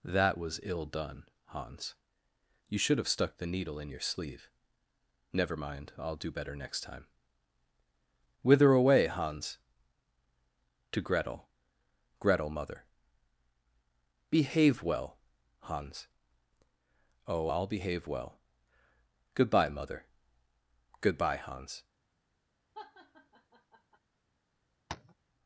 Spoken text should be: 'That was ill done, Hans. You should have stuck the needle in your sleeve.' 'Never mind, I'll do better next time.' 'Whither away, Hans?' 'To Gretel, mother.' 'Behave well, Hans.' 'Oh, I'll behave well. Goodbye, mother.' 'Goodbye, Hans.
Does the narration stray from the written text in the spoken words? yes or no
yes